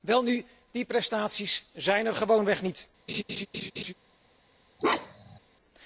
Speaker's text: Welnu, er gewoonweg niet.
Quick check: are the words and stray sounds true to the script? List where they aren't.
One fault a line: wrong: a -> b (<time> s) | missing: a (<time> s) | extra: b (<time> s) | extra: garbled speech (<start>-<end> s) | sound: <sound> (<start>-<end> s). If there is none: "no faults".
extra: die prestaties zijn (0.7 s)
sound: laugh (3.1-3.9 s)
sound: bark (4.8-5.4 s)